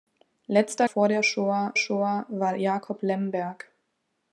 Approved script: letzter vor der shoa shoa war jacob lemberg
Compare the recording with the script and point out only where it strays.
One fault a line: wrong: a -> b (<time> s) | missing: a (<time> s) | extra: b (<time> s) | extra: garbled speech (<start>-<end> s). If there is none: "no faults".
no faults